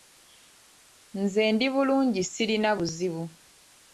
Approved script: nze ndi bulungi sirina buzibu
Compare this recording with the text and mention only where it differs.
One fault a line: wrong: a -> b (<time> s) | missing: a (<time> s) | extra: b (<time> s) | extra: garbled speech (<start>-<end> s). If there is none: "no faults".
no faults